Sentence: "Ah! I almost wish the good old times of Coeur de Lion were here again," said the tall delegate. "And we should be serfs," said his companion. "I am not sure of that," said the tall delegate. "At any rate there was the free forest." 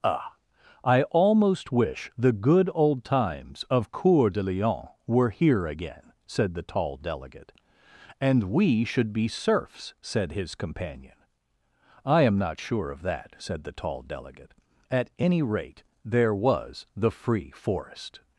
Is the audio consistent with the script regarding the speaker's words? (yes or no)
yes